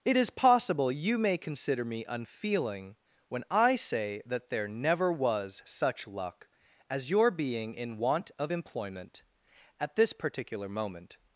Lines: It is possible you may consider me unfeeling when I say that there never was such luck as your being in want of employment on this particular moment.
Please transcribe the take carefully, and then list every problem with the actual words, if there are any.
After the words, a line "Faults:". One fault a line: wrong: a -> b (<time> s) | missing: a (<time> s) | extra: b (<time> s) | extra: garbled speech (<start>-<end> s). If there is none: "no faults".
It is possible you may consider me unfeeling when I say that there never was such luck as your being in want of employment at this particular moment.
Faults:
wrong: on -> at (9.8 s)